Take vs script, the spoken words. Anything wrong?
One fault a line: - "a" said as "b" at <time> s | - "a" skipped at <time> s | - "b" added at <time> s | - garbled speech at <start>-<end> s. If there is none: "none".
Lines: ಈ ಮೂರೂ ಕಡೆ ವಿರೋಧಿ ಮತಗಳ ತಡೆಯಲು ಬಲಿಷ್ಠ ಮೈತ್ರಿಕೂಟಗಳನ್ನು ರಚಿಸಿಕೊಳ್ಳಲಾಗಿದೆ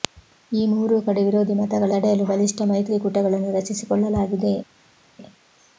none